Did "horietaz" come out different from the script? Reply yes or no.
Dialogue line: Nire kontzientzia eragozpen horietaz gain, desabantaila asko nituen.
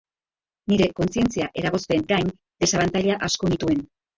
yes